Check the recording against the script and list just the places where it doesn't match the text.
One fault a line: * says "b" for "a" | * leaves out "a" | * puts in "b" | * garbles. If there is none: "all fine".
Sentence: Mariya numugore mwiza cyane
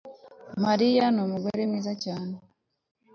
all fine